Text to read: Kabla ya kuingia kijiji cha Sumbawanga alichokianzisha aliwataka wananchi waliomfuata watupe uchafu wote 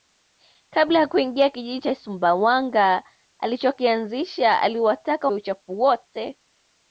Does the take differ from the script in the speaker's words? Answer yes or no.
yes